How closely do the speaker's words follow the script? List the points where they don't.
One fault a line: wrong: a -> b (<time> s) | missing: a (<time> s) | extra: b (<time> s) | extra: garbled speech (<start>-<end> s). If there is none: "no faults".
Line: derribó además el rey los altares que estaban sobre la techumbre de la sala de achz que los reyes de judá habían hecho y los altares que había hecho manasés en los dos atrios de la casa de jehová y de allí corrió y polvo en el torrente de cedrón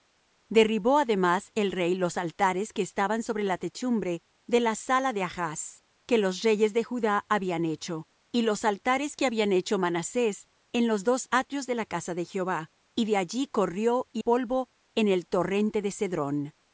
no faults